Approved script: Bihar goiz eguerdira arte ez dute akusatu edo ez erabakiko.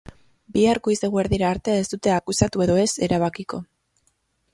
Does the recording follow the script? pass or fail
pass